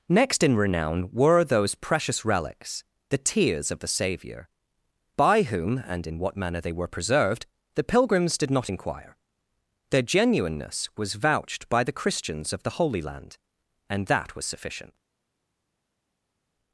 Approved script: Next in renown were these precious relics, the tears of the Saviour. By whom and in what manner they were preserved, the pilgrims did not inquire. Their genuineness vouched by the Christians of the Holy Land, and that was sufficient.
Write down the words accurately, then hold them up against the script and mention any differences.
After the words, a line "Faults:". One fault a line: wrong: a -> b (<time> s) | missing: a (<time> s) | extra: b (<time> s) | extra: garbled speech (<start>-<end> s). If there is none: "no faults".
Next in renown were those precious relics, the tears of the Saviour. By whom and in what manner they were preserved, the pilgrims did not inquire. Their genuineness was vouched by the Christians of the Holy Land, and that was sufficient.
Faults:
wrong: these -> those (1.4 s)
extra: was (11.0 s)